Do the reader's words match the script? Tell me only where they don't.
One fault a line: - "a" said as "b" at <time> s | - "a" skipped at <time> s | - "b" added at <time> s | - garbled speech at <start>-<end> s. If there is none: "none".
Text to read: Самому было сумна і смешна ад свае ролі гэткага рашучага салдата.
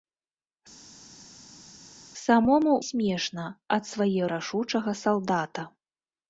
- "было сумна" skipped at 2.7 s
- "ролі гэткага" skipped at 4.2 s